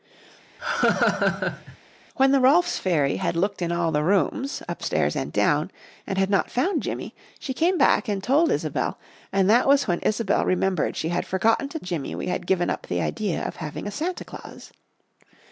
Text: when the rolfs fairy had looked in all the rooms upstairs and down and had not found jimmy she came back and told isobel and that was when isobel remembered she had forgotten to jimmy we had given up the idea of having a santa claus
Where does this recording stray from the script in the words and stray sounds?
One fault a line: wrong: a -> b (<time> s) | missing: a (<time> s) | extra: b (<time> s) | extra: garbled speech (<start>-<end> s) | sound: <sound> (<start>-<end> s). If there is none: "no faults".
sound: laugh (0.6-1.8 s)